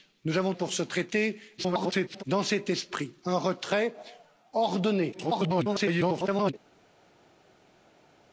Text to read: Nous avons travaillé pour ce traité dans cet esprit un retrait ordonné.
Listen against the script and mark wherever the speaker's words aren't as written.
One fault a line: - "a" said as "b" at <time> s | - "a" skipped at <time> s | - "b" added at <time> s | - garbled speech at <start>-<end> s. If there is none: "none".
- "travaillé" skipped at 0.5 s
- garbled speech at 1.6-2.2 s
- garbled speech at 5.1-6.5 s